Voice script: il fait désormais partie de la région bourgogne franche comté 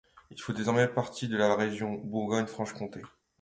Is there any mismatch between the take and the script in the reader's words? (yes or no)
no